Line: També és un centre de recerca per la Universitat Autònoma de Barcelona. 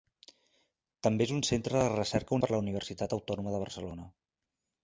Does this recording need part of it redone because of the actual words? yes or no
no